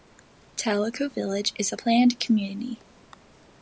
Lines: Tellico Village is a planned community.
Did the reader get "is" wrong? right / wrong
right